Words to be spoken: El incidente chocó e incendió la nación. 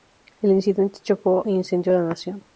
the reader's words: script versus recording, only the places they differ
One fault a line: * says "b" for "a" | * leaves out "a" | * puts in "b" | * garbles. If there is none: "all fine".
all fine